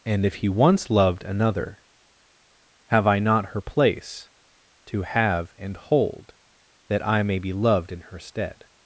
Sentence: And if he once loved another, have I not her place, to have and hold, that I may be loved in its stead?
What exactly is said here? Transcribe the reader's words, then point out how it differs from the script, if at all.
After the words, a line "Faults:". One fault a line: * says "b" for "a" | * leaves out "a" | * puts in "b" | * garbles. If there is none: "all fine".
And if he once loved another, have I not her place, to have and hold, that I may be loved in her stead?
Faults:
* says "her" for "its"